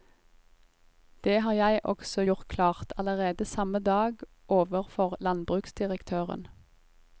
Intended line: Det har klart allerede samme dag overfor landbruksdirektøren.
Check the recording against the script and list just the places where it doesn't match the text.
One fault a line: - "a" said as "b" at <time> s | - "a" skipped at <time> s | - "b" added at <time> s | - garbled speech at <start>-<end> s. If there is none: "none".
- "jeg også gjort" added at 1.5 s